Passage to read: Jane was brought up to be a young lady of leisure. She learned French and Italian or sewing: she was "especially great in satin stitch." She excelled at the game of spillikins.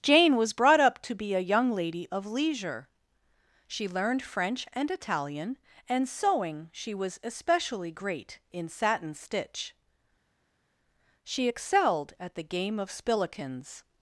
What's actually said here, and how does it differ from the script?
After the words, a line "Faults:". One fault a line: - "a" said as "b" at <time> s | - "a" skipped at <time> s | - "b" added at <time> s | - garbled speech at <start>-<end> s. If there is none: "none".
Jane was brought up to be a young lady of leisure. She learned French and Italian and sewing: she was "especially great in satin stitch." She excelled at the game of spillikins.
Faults:
- "or" said as "and" at 5.9 s